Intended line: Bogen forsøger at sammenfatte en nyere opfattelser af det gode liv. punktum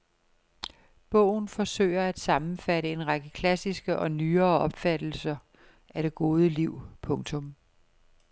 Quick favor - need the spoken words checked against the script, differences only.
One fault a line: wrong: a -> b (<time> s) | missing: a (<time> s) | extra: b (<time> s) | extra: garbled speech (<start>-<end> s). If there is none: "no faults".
extra: række klassiske og (3.1 s)